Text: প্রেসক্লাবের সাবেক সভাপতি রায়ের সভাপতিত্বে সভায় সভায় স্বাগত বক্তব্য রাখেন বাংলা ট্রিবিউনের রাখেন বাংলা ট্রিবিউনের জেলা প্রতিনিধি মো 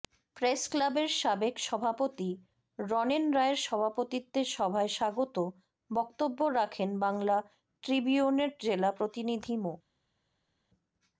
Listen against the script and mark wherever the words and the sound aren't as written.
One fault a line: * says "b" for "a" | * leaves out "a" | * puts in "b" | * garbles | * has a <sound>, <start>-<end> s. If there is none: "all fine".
* puts in "রনেন"
* leaves out "সভায়"
* leaves out "রাখেন বাংলা ট্রিবিউনের"